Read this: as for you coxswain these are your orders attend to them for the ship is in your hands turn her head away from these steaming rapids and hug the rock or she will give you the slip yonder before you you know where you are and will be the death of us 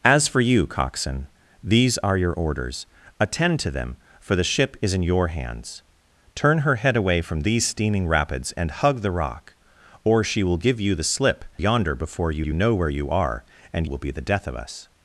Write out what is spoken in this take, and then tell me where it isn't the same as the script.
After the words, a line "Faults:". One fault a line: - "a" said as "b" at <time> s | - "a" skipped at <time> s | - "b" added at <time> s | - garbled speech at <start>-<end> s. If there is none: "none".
as for you coxswain these are your orders attend to them for the ship is in your hands turn her head away from these steaming rapids and hug the rock or she will give you the slip yonder before you you know where you are and will be the death of us
Faults:
none